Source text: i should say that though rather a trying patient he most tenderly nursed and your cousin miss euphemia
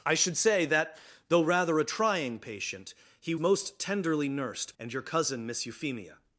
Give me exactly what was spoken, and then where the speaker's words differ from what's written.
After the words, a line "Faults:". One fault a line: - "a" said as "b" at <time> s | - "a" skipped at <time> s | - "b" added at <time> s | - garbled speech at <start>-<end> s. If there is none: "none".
i should say that though rather a trying patient he most tenderly nursed and your cousin miss euphemia
Faults:
none